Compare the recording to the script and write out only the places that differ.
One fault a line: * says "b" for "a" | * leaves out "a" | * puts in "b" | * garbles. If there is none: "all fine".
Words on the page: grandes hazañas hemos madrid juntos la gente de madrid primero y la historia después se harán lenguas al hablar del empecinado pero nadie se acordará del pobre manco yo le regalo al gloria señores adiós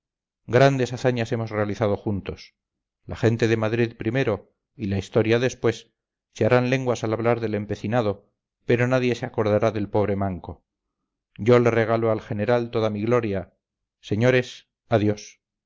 * says "realizado" for "madrid"
* puts in "general toda mi"